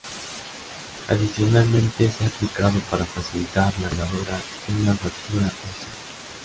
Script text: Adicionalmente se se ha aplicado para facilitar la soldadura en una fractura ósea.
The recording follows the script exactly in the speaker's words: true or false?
false